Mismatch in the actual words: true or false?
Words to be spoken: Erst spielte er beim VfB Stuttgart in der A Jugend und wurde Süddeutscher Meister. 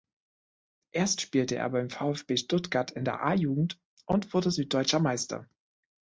false